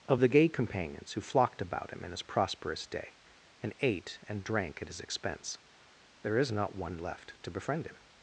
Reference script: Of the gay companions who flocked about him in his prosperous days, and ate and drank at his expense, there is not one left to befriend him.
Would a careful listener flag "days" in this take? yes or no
yes